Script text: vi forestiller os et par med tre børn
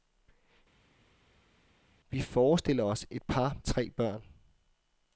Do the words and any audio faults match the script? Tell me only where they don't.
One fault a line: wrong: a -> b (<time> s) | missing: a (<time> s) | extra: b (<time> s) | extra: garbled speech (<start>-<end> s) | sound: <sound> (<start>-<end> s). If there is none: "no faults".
missing: med (3.6 s)